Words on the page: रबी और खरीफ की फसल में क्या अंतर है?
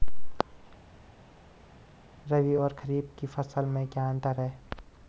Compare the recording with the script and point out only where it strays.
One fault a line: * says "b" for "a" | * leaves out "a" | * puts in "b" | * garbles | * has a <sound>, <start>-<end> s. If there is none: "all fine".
all fine